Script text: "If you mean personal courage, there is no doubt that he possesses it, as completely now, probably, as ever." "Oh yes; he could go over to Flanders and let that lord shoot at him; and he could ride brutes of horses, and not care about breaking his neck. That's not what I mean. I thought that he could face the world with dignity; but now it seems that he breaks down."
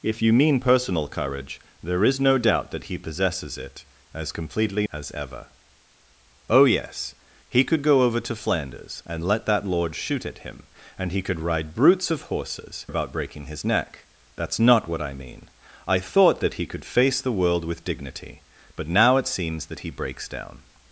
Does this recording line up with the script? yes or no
no